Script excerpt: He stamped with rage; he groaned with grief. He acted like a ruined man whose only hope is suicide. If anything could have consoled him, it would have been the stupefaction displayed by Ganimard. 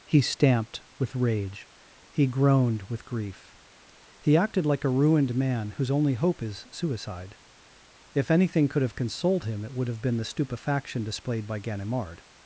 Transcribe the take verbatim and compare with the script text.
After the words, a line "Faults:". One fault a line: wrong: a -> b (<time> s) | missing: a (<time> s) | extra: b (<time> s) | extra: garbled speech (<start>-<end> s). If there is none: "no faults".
He stamped with rage; he groaned with grief. He acted like a ruined man whose only hope is suicide. If anything could have consoled him, it would have been the stupefaction displayed by Ganimard.
Faults:
no faults